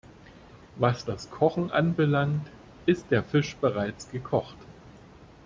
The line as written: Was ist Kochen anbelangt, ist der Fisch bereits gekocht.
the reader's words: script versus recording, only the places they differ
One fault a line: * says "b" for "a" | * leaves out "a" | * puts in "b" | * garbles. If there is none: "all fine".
* says "das" for "ist"